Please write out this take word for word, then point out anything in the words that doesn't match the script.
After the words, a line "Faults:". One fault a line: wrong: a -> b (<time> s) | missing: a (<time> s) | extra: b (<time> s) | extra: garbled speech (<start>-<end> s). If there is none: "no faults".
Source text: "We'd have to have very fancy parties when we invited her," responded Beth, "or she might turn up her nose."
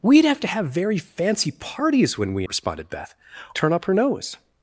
"We'd have to have very fancy parties when we," responded Beth, "turn up her nose."
Faults:
missing: invited her (2.4 s)
missing: or she might (3.1 s)